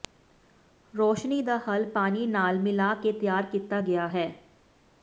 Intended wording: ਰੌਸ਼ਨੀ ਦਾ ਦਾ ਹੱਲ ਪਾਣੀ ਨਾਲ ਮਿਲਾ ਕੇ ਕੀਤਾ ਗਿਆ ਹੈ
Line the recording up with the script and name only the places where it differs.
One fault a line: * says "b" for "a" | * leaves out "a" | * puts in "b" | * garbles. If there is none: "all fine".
* leaves out "ਦਾ"
* puts in "ਤਿਆਰ"